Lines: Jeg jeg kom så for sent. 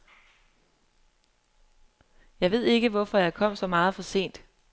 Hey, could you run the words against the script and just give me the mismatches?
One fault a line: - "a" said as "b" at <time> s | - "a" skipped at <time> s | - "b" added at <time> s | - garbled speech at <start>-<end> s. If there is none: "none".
- "ved ikke hvorfor" added at 2.5 s
- "meget" added at 3.7 s